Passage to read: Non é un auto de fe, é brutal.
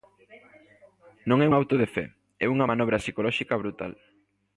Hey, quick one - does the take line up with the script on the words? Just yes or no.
no